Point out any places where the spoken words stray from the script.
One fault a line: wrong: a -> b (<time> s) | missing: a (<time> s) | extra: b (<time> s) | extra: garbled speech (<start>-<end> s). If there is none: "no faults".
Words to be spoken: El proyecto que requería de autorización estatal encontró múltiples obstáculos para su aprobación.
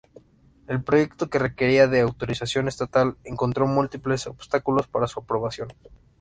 no faults